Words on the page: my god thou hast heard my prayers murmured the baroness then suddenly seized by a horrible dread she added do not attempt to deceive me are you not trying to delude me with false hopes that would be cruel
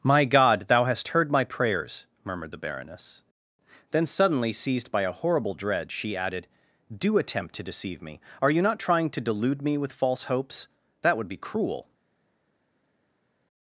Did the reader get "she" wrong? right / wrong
right